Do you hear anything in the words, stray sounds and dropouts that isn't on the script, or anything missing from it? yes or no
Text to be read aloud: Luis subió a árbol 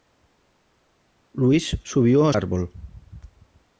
no